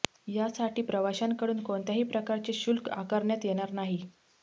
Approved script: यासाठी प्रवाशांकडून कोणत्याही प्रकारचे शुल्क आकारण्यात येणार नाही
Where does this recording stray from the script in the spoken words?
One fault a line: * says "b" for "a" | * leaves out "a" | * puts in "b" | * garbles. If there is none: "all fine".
all fine